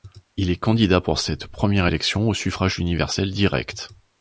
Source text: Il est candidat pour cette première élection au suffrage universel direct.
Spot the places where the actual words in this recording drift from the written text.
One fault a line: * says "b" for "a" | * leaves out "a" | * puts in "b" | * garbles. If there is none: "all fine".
all fine